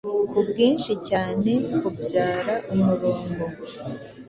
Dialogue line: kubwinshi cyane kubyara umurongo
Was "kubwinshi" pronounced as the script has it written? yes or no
yes